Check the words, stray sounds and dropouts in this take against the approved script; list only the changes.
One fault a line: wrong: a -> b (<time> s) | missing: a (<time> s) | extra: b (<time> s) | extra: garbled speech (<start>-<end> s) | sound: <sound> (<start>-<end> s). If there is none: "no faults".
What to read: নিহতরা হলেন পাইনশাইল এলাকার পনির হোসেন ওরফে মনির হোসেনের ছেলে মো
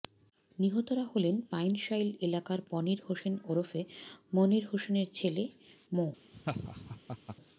sound: laugh (6.3-7.4 s)